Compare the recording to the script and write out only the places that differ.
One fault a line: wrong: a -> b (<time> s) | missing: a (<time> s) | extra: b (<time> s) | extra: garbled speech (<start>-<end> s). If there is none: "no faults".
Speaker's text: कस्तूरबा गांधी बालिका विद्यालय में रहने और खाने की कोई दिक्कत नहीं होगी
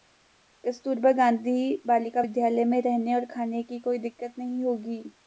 no faults